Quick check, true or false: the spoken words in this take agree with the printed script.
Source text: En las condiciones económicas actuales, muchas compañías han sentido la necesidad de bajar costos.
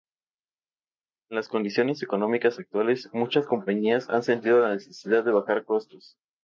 true